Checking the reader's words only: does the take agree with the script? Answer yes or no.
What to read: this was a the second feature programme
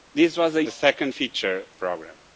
yes